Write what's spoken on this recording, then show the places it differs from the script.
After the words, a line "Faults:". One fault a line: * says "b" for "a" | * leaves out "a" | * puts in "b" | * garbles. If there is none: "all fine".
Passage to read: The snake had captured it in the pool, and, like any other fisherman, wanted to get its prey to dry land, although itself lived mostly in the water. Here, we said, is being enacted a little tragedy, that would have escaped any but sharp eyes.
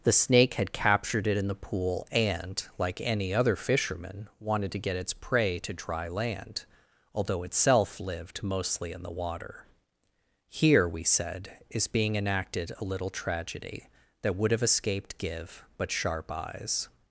The snake had captured it in the pool, and, like any other fisherman, wanted to get its prey to dry land, although itself lived mostly in the water. Here, we said, is being enacted a little tragedy, that would have escaped give but sharp eyes.
Faults:
* says "give" for "any"